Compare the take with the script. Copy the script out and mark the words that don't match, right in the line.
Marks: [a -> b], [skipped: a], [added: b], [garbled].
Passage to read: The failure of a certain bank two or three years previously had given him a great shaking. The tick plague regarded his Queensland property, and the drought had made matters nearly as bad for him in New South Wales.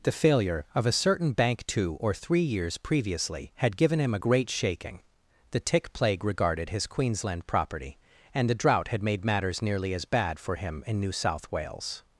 The failure of a certain bank two or three years previously had given him a great shaking. The tick plague regarded his Queensland property, and the drought had made matters nearly as bad for him in New South Wales.